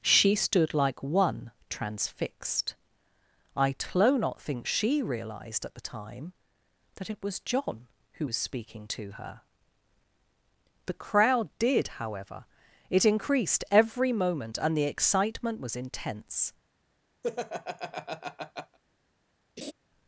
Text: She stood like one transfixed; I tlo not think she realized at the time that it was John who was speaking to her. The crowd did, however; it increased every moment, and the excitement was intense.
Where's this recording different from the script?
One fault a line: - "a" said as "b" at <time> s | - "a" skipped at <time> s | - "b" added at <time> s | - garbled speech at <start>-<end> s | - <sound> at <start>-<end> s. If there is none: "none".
- laugh at 17.2-18.8 s
- laugh at 19.6-19.7 s